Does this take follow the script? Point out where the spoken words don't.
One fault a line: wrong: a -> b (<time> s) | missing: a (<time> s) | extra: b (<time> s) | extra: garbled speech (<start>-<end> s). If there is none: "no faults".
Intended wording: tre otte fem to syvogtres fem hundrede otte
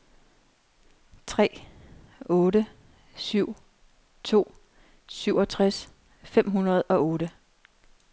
wrong: fem -> syv (3.1 s)
extra: og (6.8 s)